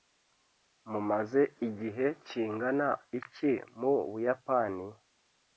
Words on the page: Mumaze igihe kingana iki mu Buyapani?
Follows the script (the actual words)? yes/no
yes